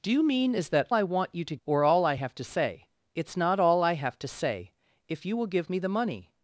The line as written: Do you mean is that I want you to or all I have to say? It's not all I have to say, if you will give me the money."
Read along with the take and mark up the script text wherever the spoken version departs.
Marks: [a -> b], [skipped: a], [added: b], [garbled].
Do you mean is that I want you to or all I have to say? It's not all I have to say, if you will give me the money."